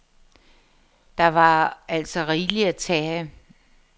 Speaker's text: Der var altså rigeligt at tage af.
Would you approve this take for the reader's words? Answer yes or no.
yes